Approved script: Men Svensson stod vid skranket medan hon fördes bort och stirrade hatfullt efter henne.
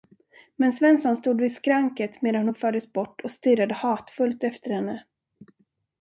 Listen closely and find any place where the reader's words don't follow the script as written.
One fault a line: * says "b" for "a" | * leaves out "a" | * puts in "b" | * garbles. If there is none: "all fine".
all fine